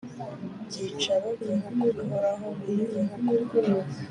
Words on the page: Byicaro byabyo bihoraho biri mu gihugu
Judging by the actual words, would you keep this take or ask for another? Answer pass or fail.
fail